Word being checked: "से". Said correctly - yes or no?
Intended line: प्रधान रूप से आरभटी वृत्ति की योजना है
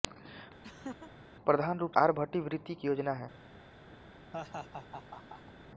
no